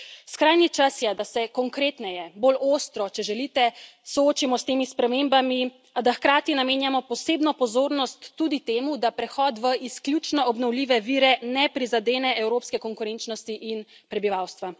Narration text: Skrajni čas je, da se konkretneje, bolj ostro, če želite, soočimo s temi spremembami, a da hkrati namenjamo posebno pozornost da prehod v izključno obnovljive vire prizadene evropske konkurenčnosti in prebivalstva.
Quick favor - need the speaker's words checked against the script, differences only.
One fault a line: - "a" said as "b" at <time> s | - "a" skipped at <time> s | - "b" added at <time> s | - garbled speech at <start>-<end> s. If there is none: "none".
- "tudi temu" added at 8.4 s
- "ne" added at 11.5 s